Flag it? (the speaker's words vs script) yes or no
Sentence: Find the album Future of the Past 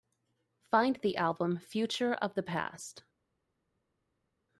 no